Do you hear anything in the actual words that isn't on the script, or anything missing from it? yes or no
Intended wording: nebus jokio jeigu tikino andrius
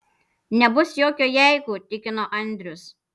no